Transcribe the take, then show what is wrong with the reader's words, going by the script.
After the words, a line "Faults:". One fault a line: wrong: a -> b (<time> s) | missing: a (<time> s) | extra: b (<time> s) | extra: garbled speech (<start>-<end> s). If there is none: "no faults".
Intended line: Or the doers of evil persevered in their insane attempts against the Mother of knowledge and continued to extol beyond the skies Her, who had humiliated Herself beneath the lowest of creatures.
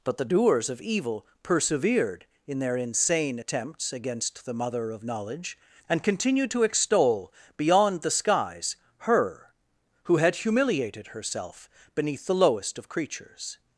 But the doers of evil persevered in their insane attempts against the Mother of knowledge and continued to extol beyond the skies Her, who had humiliated Herself beneath the lowest of creatures.
Faults:
wrong: Or -> But (0.0 s)